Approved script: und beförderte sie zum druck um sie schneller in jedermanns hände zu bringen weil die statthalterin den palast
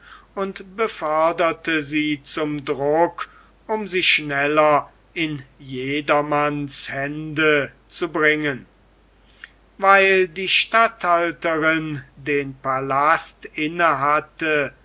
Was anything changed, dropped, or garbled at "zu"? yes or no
no